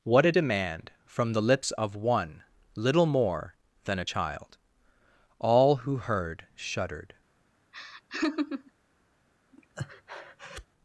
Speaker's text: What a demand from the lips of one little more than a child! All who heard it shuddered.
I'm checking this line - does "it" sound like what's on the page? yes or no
no